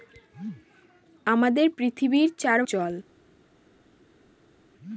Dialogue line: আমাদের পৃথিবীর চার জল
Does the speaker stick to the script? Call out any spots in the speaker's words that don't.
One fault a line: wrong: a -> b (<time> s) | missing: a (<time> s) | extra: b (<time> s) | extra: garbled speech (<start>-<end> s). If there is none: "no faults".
no faults